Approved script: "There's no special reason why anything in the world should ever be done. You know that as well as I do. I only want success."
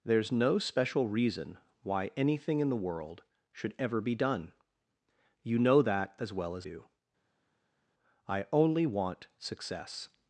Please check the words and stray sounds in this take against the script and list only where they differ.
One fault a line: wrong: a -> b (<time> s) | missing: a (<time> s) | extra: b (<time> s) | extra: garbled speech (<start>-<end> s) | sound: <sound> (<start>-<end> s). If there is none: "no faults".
missing: I (6.7 s)